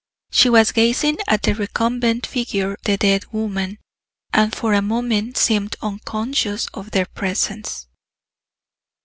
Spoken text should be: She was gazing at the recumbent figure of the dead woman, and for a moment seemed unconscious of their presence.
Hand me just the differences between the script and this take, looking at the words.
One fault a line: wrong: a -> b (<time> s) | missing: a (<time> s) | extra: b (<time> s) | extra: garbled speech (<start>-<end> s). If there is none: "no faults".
missing: of (2.8 s)